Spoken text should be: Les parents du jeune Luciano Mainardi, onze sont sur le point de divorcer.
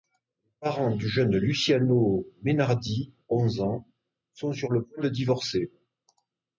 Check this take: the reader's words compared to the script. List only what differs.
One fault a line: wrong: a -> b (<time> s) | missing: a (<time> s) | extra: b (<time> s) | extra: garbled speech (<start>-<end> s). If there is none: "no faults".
extra: ans (3.6 s)